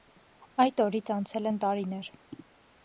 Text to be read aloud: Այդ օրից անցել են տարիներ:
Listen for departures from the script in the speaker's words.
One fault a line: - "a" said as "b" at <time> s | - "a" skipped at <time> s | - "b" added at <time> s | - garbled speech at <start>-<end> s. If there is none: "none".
none